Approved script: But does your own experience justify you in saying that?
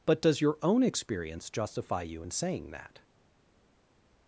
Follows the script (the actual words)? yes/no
yes